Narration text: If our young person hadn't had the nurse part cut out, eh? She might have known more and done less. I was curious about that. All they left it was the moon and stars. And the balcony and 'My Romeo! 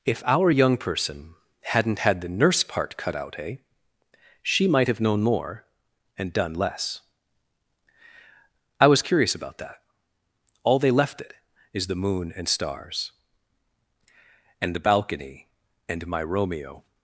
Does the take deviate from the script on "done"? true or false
false